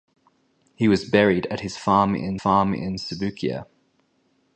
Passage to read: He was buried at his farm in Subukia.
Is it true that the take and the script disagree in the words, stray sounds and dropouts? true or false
true